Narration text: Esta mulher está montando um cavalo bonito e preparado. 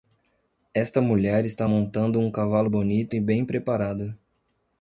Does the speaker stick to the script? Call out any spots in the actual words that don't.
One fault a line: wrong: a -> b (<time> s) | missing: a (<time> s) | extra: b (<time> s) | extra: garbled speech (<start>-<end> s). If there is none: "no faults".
extra: bem (3.2 s)